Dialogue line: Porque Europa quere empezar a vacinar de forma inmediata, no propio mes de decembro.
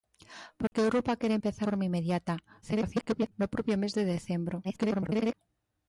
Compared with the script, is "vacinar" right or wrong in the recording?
wrong